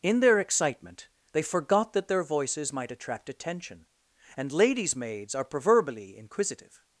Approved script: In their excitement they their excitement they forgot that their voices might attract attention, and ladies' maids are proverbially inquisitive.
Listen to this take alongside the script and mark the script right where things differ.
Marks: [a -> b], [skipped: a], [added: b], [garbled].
In their excitement they [skipped: their excitement they] forgot that their voices might attract attention, and ladies' maids are proverbially inquisitive.